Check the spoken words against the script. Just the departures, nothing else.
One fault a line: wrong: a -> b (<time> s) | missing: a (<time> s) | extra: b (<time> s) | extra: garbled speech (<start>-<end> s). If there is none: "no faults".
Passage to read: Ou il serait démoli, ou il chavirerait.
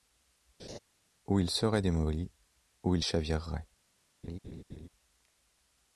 no faults